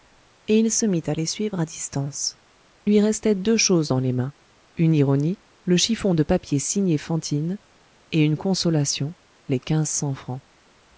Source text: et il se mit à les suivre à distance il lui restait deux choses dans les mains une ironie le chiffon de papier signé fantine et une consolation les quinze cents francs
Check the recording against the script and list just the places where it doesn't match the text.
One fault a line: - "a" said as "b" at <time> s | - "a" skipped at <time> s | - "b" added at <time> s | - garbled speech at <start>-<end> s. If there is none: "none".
- "il" skipped at 2.4 s